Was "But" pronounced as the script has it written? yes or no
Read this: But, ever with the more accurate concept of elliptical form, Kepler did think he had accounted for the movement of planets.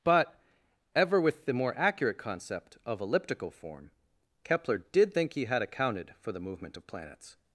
yes